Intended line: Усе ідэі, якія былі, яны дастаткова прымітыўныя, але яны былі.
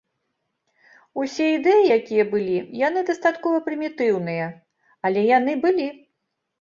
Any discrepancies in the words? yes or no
no